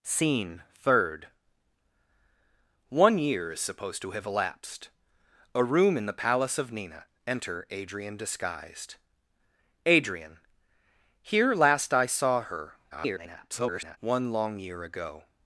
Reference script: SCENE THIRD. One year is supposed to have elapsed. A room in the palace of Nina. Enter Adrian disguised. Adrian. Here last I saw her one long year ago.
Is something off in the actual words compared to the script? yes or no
yes